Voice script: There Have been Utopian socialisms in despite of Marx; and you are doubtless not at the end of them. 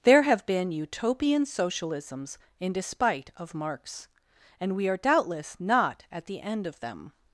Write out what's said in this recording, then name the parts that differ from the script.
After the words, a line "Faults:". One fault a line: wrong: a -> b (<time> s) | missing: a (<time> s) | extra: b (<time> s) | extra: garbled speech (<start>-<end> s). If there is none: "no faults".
There Have been Utopian socialisms in despite of Marx; and we are doubtless not at the end of them.
Faults:
wrong: you -> we (4.7 s)